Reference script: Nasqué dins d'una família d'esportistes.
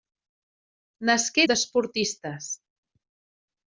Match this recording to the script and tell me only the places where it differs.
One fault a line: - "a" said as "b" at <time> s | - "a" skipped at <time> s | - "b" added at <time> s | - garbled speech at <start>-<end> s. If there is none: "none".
- "dins d'una família" skipped at 1.4 s